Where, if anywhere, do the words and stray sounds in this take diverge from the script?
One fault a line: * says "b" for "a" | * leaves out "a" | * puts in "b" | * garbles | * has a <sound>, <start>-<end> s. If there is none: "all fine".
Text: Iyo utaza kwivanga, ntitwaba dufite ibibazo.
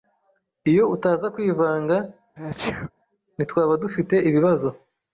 * has a sneeze, 2.4-2.9 s